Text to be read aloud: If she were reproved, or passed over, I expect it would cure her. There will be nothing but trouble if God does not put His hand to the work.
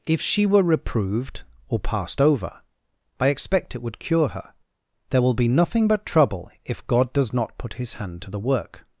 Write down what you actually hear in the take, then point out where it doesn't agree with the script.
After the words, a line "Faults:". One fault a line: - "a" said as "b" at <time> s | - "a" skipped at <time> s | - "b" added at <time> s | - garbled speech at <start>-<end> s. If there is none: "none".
If she were reproved, or passed over, I expect it would cure her. There will be nothing but trouble if God does not put His hand to the work.
Faults:
none